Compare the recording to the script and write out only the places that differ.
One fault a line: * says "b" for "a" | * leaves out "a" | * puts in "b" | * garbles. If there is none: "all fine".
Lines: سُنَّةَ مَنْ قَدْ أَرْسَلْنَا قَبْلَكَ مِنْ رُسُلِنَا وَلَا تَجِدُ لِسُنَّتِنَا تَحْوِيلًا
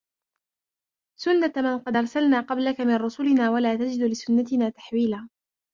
all fine